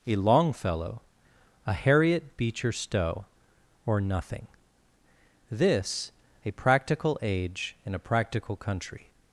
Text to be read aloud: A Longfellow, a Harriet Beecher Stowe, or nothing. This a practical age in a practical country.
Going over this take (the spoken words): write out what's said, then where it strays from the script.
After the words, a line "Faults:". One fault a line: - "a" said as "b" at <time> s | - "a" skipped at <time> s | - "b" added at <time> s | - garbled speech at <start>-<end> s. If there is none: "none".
A Longfellow, a Harriet Beecher Stowe, or nothing. This a practical age in a practical country.
Faults:
none